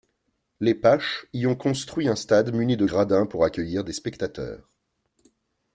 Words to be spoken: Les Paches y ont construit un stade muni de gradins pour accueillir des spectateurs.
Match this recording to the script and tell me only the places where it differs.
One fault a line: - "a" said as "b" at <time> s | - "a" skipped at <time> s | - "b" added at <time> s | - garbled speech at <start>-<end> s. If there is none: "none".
none